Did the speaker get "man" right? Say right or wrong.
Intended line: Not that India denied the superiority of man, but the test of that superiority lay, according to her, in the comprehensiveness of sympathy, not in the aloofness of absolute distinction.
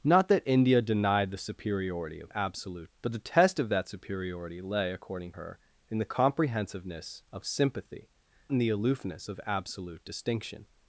wrong